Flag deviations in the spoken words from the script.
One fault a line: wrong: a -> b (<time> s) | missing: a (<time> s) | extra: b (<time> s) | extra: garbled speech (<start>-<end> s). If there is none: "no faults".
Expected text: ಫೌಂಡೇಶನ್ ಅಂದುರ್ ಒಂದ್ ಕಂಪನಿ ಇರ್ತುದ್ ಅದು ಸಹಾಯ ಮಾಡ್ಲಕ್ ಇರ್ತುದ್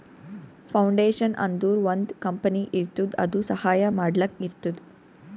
no faults